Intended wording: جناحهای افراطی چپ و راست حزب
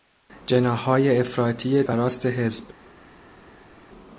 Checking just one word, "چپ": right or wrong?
wrong